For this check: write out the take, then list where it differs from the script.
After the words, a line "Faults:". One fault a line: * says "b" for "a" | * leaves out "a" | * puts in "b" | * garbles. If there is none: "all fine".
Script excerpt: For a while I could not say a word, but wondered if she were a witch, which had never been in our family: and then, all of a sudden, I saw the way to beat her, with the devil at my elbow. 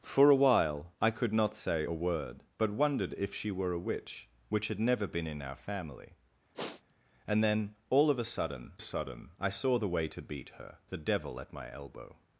For a while I could not say a word, but wondered if she were a witch, which had never been in our family: and then, all of a sudden sudden, I saw the way to beat her, the devil at my elbow.
Faults:
* puts in "sudden"
* leaves out "with"